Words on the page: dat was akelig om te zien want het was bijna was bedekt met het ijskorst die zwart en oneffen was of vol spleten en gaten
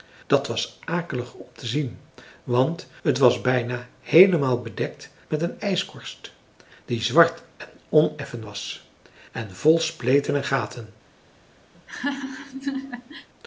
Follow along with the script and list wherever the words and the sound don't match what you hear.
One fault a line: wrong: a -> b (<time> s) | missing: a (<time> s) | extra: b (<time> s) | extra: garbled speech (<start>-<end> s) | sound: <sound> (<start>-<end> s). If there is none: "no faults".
wrong: was -> heelemaal (4.0 s)
wrong: het -> een (5.4 s)
wrong: of -> en (9.3 s)
sound: laugh (11.7-13.3 s)